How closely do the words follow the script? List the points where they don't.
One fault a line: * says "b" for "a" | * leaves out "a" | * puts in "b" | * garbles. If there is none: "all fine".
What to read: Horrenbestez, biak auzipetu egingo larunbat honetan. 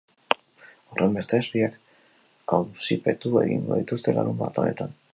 * puts in "dituzte"